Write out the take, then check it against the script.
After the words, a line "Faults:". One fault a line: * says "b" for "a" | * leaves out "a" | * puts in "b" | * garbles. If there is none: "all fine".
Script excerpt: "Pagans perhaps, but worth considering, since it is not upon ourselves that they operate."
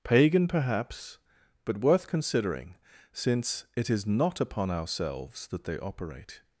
"Pagan perhaps, but worth considering, since it is not upon ourselves that they operate."
Faults:
* says "Pagan" for "Pagans"